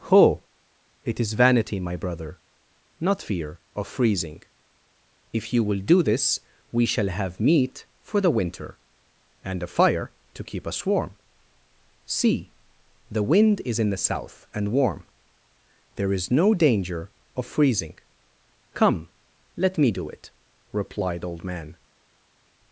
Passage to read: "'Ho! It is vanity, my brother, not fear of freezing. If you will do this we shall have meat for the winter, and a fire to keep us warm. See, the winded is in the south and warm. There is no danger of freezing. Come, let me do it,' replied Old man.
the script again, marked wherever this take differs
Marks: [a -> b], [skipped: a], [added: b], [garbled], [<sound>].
"'Ho! It is vanity, my brother, not fear of freezing. If you will do this we shall have meat for the winter, and a fire to keep us warm. See, the [winded -> wind] is in the south and warm. There is no danger of freezing. Come, let me do it,' replied Old man.